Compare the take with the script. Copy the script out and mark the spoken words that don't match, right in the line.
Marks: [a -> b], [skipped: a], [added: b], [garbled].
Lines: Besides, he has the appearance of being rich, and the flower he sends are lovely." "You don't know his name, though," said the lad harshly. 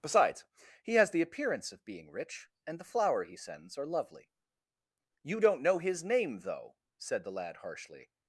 Besides, he has the appearance of being rich, and the flower he sends are lovely." "You don't know his name, though," said the lad harshly.